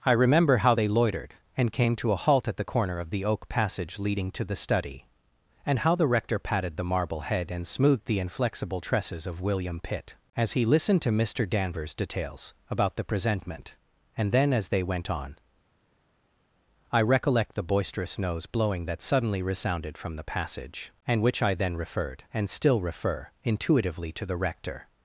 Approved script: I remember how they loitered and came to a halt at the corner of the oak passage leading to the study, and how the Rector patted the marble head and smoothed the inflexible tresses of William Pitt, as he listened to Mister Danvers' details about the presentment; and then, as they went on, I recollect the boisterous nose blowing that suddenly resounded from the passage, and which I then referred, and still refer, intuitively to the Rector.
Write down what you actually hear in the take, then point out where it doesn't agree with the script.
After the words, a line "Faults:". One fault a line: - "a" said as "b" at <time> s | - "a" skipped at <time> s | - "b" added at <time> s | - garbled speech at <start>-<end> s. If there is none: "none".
I remember how they loitered and came to a halt at the corner of the oak passage leading to the study, and how the Rector patted the marble head and smoothed the inflexible tresses of William Pitt, as he listened to Mister Danvers' details about the presentment; and then, as they went on, I recollect the boisterous nose blowing that suddenly resounded from the passage, and which I then referred, and still refer, intuitively to the Rector.
Faults:
none